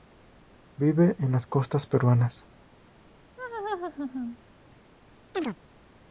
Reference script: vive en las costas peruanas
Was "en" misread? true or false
false